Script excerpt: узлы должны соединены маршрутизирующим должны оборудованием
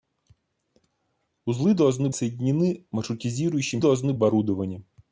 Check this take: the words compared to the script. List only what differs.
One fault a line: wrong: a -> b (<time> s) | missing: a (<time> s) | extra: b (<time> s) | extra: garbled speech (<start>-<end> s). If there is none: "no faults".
no faults